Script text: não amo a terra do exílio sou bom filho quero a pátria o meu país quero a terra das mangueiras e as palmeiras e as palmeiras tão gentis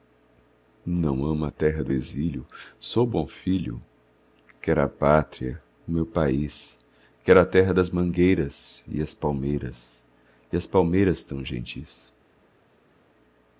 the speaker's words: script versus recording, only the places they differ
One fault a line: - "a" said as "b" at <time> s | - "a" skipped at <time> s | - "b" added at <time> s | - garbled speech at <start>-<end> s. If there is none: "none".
none